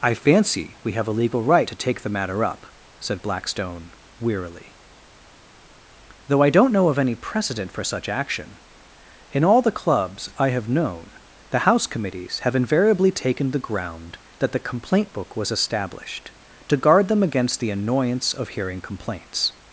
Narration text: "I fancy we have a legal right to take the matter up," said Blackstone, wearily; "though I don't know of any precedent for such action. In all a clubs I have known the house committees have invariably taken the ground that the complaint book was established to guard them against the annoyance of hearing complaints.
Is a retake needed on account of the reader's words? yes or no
yes